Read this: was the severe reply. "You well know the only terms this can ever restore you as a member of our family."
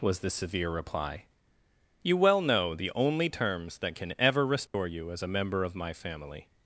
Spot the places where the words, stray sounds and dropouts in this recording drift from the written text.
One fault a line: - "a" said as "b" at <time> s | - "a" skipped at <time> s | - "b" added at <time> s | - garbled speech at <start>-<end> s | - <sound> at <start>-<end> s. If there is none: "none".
- "this" said as "that" at 3.8 s
- dropout at 4.7-4.7 s
- "our" said as "my" at 5.8 s